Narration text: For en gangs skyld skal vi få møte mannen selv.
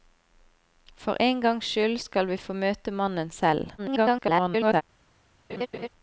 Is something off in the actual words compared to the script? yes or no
yes